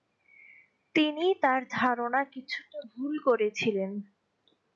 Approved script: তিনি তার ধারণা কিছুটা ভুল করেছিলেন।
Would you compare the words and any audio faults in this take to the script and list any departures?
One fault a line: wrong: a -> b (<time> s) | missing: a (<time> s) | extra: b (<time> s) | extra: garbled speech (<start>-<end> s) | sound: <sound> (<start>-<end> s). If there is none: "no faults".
no faults